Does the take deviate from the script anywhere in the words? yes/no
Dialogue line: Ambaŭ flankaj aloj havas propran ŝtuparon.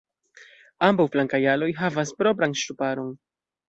no